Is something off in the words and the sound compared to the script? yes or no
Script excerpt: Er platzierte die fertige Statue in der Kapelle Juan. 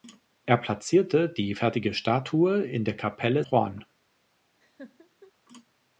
yes